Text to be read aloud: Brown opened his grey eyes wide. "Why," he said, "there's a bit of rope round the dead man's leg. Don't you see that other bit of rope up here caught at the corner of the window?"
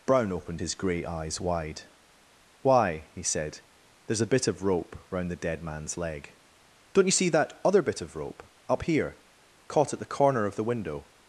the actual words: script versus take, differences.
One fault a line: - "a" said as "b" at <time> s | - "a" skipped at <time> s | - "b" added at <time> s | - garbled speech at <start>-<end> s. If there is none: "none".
none